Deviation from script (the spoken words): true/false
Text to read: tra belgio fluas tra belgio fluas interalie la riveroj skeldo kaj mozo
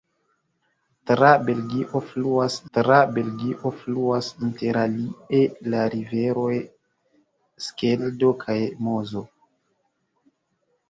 false